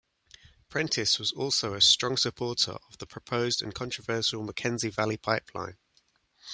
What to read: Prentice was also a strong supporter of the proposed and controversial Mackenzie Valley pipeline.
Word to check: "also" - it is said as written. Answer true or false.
true